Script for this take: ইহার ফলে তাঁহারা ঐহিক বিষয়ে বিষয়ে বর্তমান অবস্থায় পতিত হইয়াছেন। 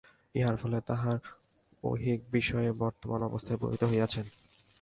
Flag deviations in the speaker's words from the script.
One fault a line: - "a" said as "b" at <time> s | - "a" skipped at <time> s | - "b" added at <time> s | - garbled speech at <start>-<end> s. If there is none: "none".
- "বিষয়ে" skipped at 2.7 s